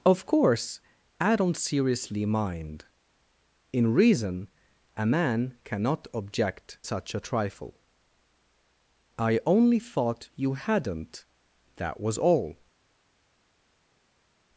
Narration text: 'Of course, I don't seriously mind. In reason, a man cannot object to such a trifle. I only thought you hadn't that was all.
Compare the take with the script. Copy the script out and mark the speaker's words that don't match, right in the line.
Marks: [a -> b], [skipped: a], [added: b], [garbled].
'Of course, I don't seriously mind. In reason, a man cannot object [skipped: to] such a trifle. I only thought you hadn't that was all.